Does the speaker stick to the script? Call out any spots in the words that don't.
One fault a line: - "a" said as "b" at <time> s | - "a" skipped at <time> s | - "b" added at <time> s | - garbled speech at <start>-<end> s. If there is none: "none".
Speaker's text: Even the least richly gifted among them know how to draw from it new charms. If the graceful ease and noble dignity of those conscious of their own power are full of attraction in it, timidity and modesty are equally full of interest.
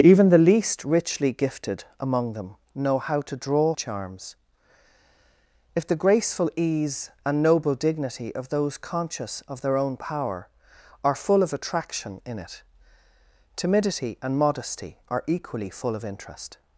- "from it new" skipped at 3.8 s